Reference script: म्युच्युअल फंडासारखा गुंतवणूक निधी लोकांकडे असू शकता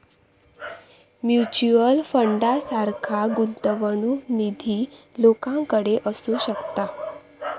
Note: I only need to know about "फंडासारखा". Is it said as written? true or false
true